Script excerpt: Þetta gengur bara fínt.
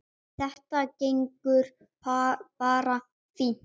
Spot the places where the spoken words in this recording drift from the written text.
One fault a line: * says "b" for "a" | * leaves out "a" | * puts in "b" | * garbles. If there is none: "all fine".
all fine